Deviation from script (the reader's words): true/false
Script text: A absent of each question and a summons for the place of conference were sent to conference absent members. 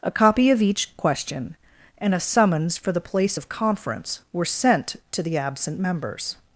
true